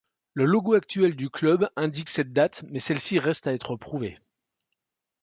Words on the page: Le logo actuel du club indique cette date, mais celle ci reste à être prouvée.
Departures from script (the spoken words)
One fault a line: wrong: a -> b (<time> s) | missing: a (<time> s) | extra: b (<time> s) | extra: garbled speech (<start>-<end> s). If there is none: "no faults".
no faults